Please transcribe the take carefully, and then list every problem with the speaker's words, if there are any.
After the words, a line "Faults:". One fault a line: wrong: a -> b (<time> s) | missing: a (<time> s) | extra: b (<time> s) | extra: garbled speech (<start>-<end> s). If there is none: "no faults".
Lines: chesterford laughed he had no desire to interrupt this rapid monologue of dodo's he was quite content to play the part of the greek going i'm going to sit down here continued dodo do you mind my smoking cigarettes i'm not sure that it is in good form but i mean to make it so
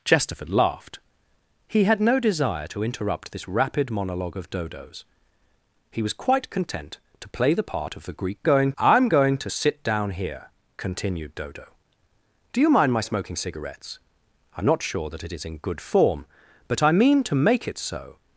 chesterford laughed he had no desire to interrupt this rapid monologue of dodo's he was quite content to play the part of the greek going i'm going to sit down here continued dodo do you mind my smoking cigarettes i'm not sure that it is in good form but i mean to make it so
Faults:
no faults